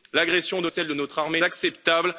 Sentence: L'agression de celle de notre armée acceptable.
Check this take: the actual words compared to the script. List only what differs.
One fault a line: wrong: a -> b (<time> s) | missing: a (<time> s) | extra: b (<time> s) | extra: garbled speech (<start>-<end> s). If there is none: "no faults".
no faults